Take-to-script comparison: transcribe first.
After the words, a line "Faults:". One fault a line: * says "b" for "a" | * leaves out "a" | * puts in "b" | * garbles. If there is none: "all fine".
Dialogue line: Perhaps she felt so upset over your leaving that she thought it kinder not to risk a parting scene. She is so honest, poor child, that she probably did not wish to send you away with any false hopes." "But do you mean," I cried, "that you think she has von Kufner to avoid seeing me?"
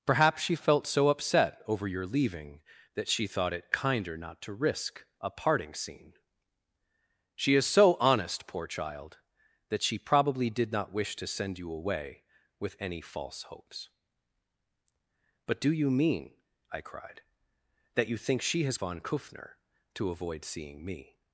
Perhaps she felt so upset over your leaving that she thought it kinder not to risk a parting scene. She is so honest, poor child, that she probably did not wish to send you away with any false hopes." "But do you mean," I cried, "that you think she has von Kufner to avoid seeing me?"
Faults:
all fine